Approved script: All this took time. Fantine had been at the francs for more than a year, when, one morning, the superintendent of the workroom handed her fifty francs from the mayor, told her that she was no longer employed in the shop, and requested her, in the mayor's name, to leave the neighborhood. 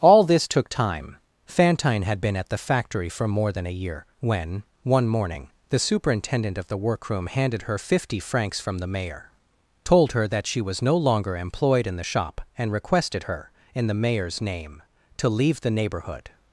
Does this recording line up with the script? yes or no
no